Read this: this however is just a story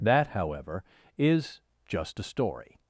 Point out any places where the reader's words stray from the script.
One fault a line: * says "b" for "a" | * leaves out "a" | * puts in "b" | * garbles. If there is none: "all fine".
* says "that" for "this"